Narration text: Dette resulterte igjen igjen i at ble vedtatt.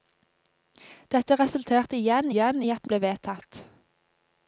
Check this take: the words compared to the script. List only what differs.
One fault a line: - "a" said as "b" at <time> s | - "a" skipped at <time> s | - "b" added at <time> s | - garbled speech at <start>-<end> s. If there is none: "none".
none